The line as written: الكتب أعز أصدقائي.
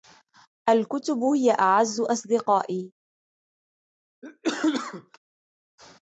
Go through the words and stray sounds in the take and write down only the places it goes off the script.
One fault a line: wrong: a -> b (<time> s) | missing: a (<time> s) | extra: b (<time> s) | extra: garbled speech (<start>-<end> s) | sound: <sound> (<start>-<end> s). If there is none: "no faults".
extra: هي (1.2 s)
sound: cough (4.2-5.2 s)